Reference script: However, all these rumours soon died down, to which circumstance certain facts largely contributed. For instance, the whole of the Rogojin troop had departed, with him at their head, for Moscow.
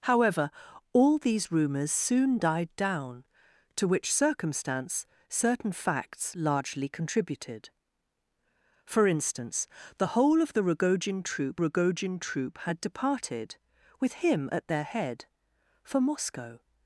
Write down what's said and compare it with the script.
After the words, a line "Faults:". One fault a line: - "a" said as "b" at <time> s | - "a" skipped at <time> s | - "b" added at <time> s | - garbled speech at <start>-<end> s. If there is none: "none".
However, all these rumours soon died down, to which circumstance certain facts largely contributed. For instance, the whole of the Rogojin troop Rogojin troop had departed, with him at their head, for Moscow.
Faults:
- "Rogojin troop" added at 11.6 s